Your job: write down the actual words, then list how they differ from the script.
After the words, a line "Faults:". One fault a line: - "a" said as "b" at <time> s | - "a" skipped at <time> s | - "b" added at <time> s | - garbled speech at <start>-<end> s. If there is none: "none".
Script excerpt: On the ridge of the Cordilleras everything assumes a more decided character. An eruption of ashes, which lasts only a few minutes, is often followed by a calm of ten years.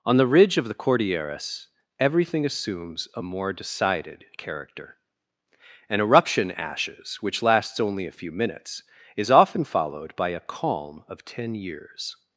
On the ridge of the Cordilleras everything assumes a more decided character. An eruption ashes, which lasts only a few minutes, is often followed by a calm of ten years.
Faults:
- "of" skipped at 6.5 s